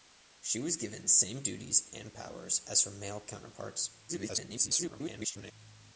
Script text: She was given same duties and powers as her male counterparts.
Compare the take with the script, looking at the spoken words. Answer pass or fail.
fail